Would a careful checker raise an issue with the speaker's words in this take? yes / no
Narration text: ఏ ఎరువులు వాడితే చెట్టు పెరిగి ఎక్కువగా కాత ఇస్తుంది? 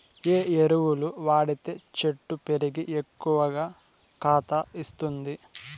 no